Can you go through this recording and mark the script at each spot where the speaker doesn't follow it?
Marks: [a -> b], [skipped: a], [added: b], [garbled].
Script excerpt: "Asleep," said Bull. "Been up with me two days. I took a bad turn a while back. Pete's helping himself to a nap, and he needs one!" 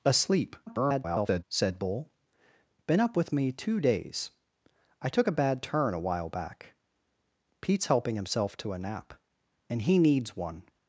"Asleep," [garbled] said Bull. "Been up with me two days. I took a bad turn a while back. Pete's helping himself to a nap, and he needs one!"